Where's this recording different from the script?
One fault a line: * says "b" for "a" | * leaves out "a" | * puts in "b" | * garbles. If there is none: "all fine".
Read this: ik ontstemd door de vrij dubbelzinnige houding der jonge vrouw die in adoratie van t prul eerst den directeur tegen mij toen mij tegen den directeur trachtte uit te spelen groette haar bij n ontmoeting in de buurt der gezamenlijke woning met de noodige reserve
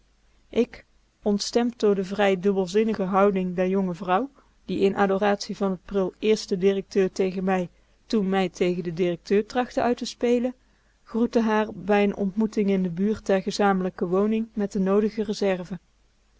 all fine